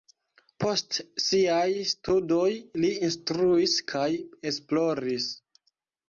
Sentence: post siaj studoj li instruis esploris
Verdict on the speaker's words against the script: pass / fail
fail